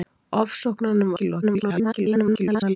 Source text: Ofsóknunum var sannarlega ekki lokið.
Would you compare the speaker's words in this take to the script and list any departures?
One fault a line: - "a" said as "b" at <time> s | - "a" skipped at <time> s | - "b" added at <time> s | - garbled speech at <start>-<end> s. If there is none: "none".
- "var sannarlega" skipped at 1.1 s
- garbled speech at 1.4-2.8 s